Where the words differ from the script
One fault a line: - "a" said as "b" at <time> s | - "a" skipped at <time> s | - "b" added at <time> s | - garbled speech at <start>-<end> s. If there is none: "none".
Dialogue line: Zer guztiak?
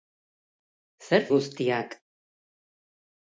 none